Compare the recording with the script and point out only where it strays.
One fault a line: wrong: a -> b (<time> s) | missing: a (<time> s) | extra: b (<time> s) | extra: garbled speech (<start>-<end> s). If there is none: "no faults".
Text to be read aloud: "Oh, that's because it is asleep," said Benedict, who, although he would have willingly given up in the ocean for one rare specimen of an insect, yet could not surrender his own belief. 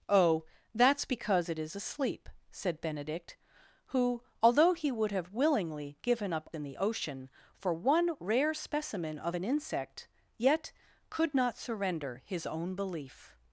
no faults